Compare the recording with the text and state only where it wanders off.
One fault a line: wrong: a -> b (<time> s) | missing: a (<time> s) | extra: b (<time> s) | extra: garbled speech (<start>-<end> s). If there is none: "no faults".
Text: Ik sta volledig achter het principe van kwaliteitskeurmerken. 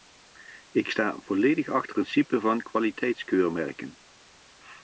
missing: het (1.9 s)